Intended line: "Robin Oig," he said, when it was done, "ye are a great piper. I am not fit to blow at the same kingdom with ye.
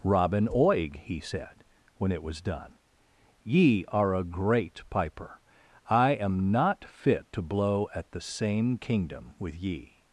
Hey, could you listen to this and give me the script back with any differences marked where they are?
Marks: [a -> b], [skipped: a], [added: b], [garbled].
"Robin Oig," he said, when it was done, "ye are a great piper. I am not fit to blow at the same kingdom with ye.